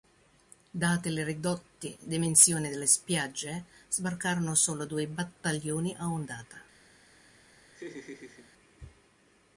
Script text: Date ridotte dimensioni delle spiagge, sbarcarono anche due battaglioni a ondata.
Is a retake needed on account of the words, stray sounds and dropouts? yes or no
yes